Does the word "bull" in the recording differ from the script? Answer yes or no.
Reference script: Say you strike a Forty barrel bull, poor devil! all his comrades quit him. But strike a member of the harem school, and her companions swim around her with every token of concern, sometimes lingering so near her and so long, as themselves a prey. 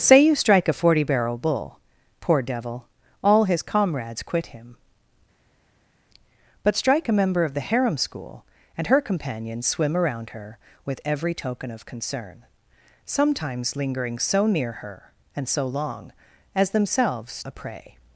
no